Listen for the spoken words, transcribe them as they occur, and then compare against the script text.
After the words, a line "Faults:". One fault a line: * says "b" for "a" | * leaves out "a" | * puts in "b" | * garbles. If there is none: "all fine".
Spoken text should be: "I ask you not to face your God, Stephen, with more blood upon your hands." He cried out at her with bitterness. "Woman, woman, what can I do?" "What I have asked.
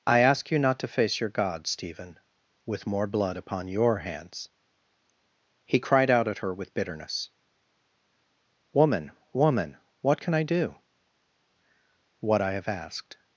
"I ask you not to face your God, Stephen, with more blood upon your hands." He cried out at her with bitterness. "Woman, woman, what can I do?" "What I have asked.
Faults:
all fine